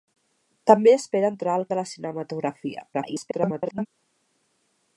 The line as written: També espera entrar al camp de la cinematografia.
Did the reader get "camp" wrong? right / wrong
wrong